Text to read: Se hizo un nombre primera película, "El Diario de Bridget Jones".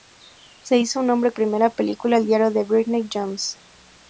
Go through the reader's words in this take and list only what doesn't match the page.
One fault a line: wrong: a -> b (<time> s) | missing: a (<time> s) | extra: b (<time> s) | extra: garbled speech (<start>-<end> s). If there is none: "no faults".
no faults